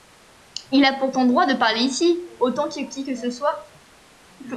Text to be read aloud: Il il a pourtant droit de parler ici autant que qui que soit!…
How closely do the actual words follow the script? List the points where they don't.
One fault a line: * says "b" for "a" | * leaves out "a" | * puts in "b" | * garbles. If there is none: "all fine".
* leaves out "il"
* puts in "ce"